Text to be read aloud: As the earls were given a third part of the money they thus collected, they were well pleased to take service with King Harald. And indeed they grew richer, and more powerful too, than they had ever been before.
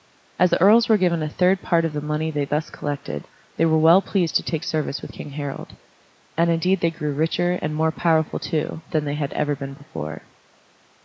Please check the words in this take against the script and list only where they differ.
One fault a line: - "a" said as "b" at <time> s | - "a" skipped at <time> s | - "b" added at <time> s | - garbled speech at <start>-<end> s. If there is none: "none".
none